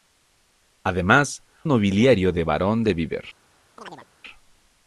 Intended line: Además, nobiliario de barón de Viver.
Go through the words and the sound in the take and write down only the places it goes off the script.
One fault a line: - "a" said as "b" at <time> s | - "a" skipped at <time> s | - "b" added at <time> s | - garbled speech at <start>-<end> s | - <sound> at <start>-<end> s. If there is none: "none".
- chirp at 3.8-4.1 s